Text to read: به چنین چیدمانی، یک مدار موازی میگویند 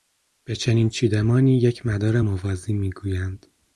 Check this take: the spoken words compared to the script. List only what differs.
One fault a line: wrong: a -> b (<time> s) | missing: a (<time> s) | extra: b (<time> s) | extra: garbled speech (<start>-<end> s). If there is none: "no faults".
no faults